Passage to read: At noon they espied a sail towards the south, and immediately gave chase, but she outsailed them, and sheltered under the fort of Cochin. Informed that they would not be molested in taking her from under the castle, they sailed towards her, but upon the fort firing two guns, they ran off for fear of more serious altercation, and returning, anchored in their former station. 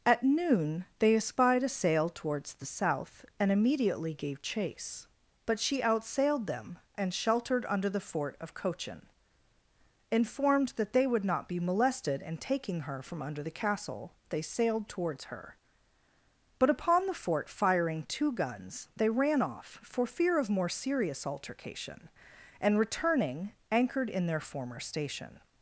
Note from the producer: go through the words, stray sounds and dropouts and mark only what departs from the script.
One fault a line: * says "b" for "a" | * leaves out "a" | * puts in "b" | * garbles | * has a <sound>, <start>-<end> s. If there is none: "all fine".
all fine